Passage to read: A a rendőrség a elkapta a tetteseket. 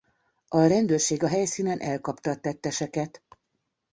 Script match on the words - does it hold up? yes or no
no